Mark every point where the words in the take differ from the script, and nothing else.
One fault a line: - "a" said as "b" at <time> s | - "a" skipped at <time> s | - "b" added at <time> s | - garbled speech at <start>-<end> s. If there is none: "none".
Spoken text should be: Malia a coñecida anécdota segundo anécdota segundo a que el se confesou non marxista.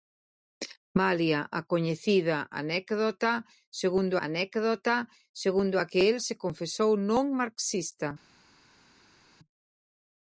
none